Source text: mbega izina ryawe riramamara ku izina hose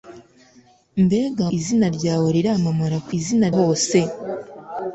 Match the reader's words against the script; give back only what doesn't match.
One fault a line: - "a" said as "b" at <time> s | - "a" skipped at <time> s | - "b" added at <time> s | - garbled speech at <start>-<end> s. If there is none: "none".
none